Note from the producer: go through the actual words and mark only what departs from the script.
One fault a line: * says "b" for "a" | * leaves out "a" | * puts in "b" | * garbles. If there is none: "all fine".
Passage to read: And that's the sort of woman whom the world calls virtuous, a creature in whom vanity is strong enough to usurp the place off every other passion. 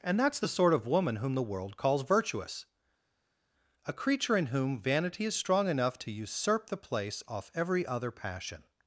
all fine